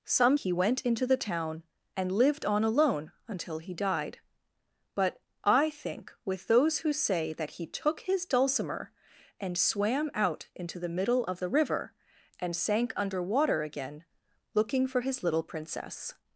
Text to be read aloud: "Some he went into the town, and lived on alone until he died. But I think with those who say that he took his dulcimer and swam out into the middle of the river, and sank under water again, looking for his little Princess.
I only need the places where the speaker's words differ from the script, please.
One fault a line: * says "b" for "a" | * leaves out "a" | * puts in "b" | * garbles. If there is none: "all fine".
all fine